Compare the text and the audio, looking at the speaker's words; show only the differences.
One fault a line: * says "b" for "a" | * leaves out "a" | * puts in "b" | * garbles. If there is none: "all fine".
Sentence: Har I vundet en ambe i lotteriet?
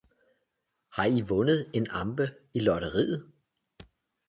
all fine